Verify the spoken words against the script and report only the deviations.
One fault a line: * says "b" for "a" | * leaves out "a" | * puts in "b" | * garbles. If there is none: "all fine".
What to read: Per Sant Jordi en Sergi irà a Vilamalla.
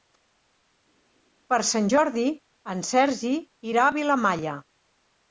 all fine